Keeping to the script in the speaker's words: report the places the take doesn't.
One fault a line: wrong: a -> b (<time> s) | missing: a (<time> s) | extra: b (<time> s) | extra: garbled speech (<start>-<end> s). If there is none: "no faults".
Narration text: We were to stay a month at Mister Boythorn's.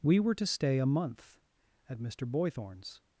no faults